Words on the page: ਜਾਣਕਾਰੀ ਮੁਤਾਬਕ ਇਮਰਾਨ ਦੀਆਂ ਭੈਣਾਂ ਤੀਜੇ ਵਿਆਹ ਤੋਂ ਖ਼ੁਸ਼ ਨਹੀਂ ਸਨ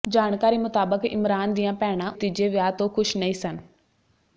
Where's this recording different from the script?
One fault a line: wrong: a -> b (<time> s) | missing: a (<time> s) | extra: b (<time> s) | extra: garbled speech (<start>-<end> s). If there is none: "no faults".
no faults